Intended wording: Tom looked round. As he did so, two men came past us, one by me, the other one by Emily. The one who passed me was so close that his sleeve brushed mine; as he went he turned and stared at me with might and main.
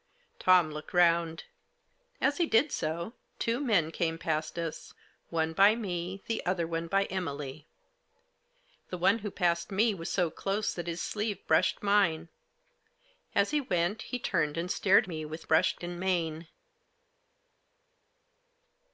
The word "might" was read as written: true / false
false